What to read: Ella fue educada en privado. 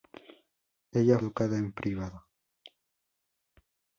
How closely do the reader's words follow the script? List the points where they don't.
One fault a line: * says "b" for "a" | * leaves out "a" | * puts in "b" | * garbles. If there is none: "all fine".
* leaves out "fue"